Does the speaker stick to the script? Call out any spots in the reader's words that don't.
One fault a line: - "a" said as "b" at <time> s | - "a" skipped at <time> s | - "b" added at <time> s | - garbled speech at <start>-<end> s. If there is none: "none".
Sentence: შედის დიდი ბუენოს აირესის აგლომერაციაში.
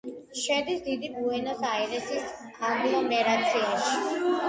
none